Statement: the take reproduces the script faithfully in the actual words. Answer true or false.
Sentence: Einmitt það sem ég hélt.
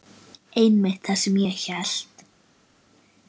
true